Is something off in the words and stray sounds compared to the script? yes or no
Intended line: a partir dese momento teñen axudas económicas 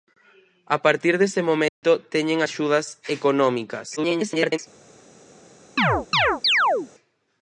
yes